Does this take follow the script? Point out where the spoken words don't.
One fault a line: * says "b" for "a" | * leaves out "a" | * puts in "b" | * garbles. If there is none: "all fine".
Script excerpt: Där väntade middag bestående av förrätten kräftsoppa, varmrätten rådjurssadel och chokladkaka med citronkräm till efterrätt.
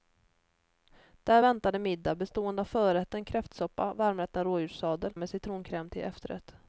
* leaves out "och chokladkaka"